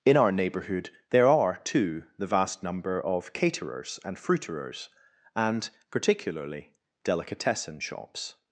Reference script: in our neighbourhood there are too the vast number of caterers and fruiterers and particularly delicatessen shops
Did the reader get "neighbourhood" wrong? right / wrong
right